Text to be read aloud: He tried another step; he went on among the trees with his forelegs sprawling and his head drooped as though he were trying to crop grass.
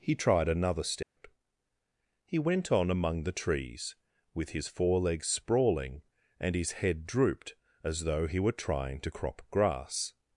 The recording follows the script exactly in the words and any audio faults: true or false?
false